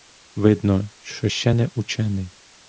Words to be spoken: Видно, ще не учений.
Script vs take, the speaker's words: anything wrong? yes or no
yes